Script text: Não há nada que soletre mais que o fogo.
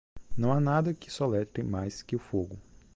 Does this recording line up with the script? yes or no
yes